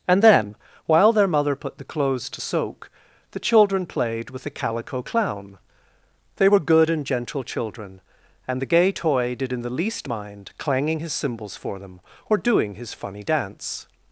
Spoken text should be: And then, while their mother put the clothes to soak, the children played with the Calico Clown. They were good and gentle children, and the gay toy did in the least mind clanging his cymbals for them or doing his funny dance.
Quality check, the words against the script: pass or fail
pass